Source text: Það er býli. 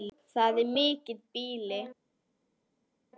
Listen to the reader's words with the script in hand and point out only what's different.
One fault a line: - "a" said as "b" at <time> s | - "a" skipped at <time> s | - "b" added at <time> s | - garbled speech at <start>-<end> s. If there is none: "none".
- "mikið" added at 0.7 s